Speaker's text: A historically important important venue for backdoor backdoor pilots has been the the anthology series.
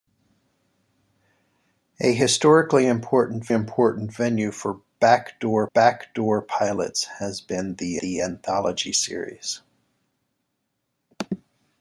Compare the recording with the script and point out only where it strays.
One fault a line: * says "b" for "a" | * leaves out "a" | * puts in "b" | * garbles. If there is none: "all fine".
all fine